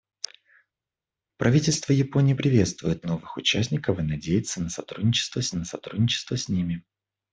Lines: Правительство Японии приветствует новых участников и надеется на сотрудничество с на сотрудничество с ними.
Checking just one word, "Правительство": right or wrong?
right